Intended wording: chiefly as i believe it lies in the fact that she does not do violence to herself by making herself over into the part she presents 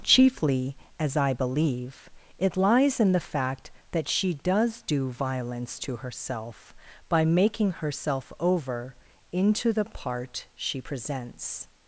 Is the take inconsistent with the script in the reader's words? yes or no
yes